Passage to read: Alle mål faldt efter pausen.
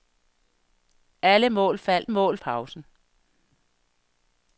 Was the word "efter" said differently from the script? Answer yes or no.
yes